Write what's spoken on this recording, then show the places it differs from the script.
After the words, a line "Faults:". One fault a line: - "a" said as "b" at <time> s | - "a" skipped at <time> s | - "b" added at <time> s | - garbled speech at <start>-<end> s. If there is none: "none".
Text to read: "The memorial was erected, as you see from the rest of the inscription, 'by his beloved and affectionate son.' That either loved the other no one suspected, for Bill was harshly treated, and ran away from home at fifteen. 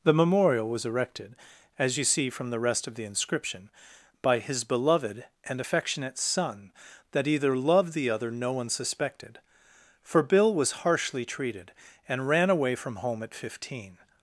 "The memorial was erected, as you see from the rest of the inscription, 'by his beloved and affectionate son.' That either loved the other no one suspected, for Bill was harshly treated, and ran away from home at fifteen.
Faults:
none